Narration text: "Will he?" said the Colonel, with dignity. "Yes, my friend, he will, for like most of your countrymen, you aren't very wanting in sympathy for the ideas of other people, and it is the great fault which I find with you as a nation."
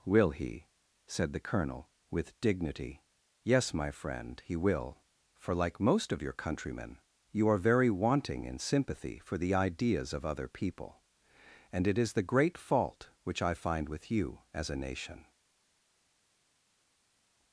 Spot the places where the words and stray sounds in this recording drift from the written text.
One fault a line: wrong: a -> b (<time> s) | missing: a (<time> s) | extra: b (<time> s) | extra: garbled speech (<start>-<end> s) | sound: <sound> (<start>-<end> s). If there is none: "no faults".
wrong: aren't -> are (7.5 s)